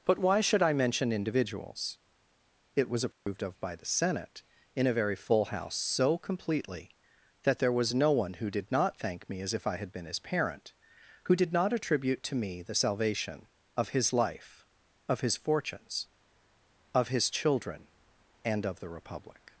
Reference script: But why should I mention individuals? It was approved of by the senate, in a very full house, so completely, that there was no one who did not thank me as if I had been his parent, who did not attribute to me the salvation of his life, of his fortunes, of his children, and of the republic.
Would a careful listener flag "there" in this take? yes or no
no